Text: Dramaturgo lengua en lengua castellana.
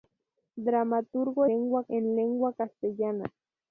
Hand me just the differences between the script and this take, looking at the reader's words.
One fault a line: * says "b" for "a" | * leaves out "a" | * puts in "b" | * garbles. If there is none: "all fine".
all fine